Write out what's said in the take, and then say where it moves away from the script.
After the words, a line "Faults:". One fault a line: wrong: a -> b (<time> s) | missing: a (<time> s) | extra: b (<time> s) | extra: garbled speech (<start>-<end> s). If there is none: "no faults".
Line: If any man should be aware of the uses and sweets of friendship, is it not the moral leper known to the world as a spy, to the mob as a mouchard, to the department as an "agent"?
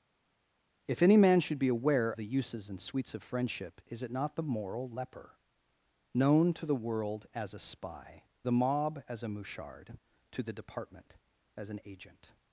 If any man should be aware the uses and sweets of friendship, is it not the moral leper known to the world as a spy, the mob as a mouchard, to the department as an "agent"?
Faults:
missing: of (2.1 s)
missing: to (8.2 s)